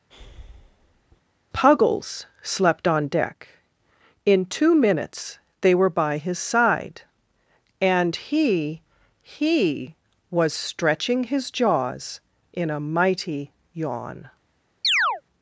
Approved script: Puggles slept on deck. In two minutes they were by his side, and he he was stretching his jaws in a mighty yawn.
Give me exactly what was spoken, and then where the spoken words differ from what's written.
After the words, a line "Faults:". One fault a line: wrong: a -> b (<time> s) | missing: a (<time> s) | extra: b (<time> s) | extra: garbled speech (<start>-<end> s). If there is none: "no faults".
Puggles slept on deck. In two minutes they were by his side, and he he was stretching his jaws in a mighty yawn.
Faults:
no faults